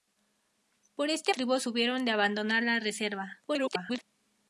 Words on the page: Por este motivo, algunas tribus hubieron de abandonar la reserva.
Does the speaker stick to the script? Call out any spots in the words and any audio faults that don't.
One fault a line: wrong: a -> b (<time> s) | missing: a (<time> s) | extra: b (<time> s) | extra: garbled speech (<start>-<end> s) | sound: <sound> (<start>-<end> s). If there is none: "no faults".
missing: motivo algunas (1.4 s)
extra: garbled speech (3.5-4.0 s)